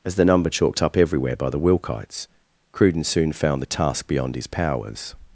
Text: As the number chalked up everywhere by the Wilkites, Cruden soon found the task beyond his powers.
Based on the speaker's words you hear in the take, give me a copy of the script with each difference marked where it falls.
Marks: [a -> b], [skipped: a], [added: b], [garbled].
As the number chalked up everywhere by the Wilkites, Cruden soon found the task beyond his powers.